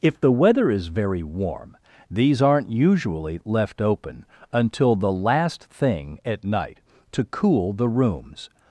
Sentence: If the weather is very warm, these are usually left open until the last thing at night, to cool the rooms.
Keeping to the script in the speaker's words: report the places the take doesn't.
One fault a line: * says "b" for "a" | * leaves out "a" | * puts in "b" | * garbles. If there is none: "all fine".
* says "aren't" for "are"